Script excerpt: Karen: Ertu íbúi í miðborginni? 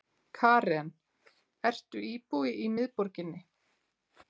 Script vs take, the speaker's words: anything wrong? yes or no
no